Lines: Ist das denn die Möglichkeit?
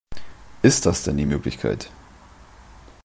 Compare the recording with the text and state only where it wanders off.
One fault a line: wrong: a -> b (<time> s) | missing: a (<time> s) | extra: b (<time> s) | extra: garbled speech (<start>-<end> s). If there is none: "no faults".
no faults